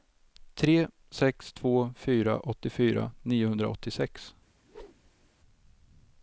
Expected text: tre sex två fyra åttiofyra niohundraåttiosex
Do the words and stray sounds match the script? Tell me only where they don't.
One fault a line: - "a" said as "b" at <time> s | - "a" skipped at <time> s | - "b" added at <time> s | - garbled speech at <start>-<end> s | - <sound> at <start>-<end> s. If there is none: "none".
- whoosh at 4.6-5.3 s